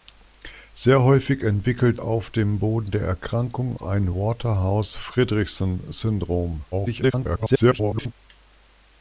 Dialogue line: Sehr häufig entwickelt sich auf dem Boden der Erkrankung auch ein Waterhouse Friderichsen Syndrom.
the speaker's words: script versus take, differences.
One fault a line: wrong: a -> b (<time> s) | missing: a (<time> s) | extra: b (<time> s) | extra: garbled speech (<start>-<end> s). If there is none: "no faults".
missing: sich (2.0 s)
missing: auch (3.8 s)
extra: garbled speech (6.7-8.1 s)